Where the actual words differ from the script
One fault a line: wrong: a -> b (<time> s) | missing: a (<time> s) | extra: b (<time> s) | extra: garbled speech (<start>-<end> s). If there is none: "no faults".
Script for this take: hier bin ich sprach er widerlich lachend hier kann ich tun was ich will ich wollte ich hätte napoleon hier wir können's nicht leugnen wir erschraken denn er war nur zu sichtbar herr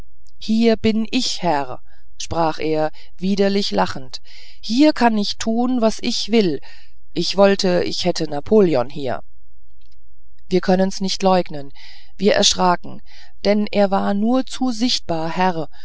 extra: herr (1.4 s)